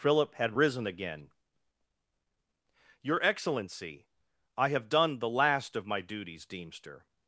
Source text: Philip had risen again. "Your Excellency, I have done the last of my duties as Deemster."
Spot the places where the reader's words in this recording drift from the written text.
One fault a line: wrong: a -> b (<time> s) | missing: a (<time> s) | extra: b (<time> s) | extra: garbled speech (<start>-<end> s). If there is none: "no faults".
missing: as (6.5 s)